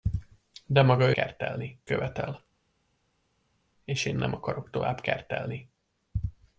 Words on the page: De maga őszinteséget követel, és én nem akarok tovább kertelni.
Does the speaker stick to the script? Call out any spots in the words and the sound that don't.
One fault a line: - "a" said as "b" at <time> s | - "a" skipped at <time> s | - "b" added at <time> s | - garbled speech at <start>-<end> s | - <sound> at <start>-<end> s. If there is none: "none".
- "őszinteséget" said as "kertelni" at 1.1 s